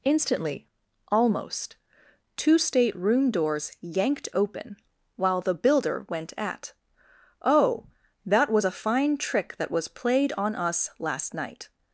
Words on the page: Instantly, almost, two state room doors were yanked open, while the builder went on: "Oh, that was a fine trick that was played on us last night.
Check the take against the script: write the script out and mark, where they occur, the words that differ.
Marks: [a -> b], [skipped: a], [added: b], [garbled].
Instantly, almost, two state room doors [skipped: were] yanked open, while the builder went [on: -> at] "Oh, that was a fine trick that was played on us last night.